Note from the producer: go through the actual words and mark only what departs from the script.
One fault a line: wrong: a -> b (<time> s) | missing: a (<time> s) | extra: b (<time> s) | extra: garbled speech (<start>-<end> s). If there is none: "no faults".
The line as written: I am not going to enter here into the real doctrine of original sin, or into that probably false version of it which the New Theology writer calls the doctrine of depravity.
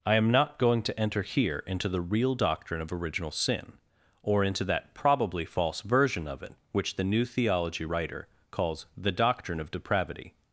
no faults